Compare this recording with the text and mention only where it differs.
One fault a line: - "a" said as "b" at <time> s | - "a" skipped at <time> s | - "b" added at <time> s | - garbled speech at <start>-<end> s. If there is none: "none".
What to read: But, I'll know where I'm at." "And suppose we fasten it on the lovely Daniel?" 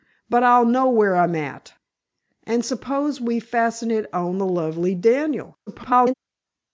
- garbled speech at 5.7-6.1 s